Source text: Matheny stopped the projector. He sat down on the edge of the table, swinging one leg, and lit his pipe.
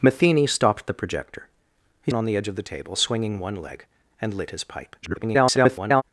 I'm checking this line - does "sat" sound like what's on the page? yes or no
no